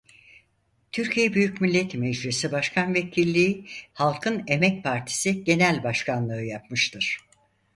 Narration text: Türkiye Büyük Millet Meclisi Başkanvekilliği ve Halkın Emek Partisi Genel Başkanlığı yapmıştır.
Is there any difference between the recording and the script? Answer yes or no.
yes